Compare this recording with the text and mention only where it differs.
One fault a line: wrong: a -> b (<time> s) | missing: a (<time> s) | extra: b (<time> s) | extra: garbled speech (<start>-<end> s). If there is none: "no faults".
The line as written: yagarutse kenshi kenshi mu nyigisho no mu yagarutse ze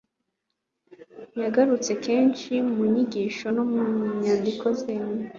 missing: kenshi (2.5 s)
wrong: yagarutse -> nyandiko (4.2 s)